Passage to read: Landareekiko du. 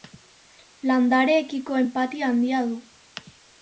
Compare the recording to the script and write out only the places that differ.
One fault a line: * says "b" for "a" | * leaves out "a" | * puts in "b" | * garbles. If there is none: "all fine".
* puts in "enpatia handia"